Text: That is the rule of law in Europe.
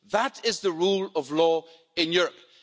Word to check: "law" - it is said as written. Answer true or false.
true